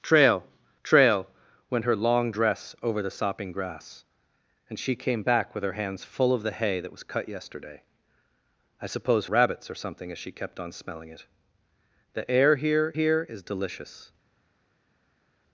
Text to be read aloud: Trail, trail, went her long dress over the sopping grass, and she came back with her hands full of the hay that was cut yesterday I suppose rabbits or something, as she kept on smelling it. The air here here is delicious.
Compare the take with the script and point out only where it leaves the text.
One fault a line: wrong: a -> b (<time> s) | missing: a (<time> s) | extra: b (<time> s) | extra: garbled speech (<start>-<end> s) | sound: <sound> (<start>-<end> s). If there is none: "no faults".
no faults